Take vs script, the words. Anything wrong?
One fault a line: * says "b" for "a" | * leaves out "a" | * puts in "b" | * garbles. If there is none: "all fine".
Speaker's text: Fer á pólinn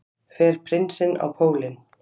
* puts in "prinsinn"